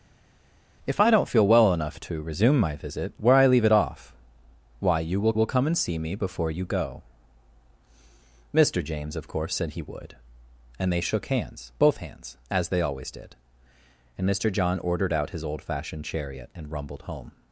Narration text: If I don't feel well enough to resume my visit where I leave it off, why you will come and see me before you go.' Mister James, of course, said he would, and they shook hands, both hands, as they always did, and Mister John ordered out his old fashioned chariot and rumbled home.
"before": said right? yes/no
yes